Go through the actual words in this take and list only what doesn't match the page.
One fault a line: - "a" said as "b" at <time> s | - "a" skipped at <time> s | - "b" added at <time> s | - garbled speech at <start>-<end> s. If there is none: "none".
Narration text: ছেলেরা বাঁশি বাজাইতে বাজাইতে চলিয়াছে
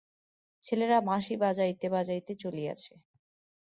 none